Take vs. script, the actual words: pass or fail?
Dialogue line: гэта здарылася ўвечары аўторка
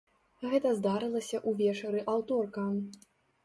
pass